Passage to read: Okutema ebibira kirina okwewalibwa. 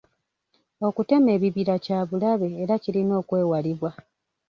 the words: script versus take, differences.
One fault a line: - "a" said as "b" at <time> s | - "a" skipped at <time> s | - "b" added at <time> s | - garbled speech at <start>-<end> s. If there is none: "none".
- "kya bulabe era" added at 1.9 s